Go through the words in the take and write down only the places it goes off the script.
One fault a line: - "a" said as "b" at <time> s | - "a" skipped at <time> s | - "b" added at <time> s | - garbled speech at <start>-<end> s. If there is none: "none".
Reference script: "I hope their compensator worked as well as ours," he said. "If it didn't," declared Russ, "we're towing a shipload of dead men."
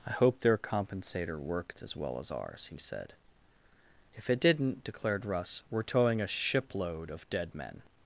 none